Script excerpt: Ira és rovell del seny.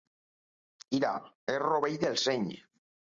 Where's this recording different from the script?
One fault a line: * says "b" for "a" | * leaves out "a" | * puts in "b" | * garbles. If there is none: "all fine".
all fine